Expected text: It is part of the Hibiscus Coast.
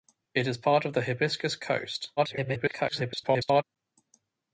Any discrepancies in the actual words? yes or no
yes